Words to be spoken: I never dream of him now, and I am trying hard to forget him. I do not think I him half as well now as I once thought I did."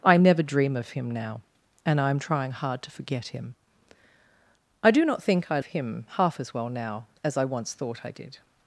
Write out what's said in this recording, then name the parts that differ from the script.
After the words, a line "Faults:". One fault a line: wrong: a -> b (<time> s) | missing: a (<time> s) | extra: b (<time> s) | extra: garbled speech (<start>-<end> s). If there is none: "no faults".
I never dream of him now, and I am trying hard to forget him. I do not think I him half as well now as I once thought I did."
Faults:
no faults